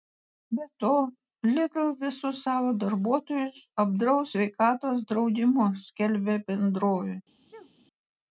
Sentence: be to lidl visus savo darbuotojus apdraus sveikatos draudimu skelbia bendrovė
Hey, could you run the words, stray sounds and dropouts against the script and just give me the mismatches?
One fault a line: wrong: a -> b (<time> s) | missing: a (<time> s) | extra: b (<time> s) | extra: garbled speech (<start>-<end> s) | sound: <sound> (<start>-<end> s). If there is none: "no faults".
sound: sneeze (7.4-7.7 s)